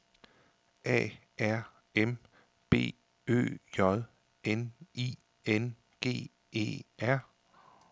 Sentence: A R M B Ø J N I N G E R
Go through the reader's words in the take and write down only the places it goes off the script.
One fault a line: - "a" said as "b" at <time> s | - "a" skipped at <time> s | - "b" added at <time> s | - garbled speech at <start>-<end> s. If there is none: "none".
none